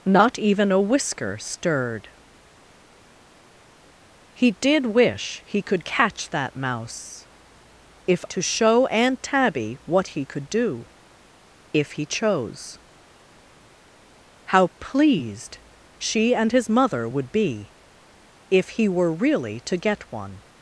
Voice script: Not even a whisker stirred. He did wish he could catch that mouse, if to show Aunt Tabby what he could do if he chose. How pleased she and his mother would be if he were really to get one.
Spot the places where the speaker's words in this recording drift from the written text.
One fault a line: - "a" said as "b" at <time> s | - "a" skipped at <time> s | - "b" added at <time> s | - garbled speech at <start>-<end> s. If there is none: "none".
none